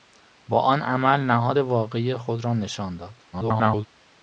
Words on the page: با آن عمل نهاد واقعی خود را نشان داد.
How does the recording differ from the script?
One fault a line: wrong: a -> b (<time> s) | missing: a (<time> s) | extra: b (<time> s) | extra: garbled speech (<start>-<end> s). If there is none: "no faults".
extra: garbled speech (3.3-3.9 s)